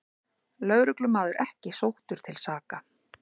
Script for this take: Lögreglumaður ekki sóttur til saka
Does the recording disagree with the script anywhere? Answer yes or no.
no